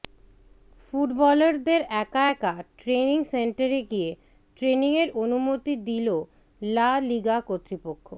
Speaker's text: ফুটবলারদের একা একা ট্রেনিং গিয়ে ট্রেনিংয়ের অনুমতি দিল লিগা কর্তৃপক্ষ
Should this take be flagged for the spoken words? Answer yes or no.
yes